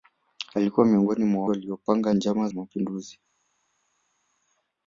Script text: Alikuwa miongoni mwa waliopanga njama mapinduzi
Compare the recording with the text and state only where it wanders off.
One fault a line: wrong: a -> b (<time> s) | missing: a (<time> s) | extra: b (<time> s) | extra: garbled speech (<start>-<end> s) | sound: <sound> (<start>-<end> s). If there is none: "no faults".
no faults